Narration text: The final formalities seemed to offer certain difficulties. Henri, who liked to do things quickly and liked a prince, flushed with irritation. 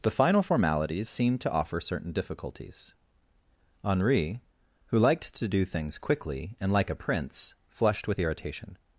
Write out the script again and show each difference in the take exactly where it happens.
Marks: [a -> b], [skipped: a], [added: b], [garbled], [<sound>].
The final formalities seemed to offer certain difficulties. Henri, who liked to do things quickly and [liked -> like] a prince, flushed with irritation.